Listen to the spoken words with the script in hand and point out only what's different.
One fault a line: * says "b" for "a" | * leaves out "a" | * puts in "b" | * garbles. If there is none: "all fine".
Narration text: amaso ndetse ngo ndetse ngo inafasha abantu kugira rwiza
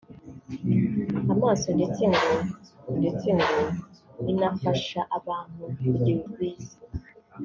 all fine